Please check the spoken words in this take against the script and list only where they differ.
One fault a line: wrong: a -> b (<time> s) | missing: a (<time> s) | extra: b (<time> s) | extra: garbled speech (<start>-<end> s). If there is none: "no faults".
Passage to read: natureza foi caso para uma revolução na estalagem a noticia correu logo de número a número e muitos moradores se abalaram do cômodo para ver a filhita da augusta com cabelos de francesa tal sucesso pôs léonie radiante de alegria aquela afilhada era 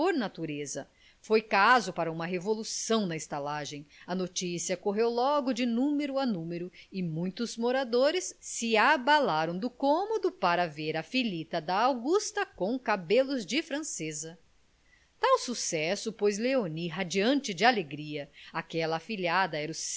no faults